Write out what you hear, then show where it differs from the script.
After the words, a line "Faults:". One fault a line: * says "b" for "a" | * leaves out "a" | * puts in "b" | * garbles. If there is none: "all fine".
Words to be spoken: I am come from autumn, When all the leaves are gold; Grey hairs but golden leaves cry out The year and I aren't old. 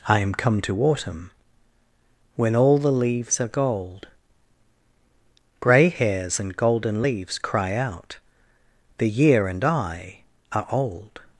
I am come to autumn, When all the leaves are gold; Grey hairs and golden leaves cry out The year and I are old.
Faults:
* says "to" for "from"
* says "and" for "but"
* says "are" for "aren't"